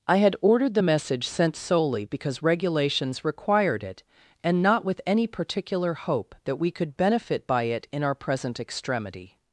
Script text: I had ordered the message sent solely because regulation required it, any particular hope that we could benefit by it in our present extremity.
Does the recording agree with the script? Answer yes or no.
no